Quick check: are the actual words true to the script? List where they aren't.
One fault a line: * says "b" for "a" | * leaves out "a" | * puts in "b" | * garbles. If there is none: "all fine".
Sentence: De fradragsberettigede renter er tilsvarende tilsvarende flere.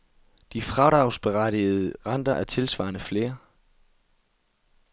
* leaves out "tilsvarende"